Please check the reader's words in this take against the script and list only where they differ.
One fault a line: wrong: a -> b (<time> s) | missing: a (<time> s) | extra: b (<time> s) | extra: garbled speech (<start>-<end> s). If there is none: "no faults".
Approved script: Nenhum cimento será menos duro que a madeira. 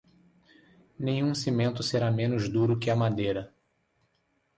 no faults